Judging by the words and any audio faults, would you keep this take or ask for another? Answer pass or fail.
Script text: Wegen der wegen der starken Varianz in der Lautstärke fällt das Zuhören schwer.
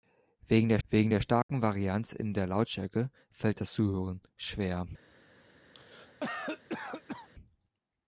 fail